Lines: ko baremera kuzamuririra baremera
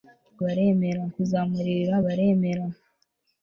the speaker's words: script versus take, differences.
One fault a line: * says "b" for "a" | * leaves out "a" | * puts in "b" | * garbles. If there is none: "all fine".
all fine